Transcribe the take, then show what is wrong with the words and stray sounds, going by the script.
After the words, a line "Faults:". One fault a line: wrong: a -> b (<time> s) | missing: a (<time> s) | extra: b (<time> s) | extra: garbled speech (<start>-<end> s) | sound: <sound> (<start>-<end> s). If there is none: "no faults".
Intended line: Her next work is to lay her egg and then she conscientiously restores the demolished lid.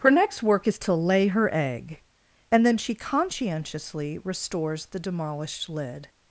Her next work is to lay her egg and then she conscientiously restores the demolished lid.
Faults:
no faults